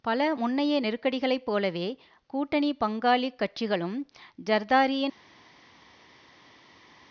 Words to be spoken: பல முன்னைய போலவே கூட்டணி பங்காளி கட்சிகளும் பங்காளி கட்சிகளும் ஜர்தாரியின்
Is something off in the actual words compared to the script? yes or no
yes